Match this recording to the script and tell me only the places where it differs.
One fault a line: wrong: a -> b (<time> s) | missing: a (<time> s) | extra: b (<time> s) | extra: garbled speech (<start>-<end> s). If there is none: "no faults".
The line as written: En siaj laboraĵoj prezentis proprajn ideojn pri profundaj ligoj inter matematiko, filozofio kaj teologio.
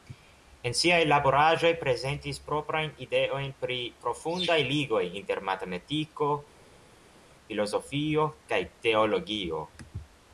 no faults